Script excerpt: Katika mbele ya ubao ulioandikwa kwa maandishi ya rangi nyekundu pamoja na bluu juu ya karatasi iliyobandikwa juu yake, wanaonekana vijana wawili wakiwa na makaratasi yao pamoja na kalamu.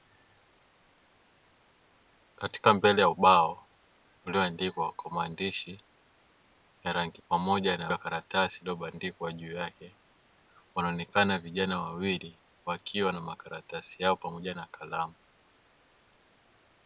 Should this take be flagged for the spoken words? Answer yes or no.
yes